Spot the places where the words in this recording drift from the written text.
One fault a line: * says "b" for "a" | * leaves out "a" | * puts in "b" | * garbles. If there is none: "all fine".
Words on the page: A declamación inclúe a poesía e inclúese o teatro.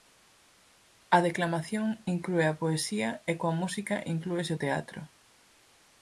* puts in "coa música"